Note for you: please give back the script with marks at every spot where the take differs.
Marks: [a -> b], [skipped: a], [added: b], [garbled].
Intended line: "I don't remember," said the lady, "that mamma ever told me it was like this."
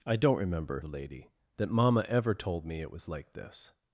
"I don't remember," [skipped: said] the lady, "that mamma ever told me it was like this."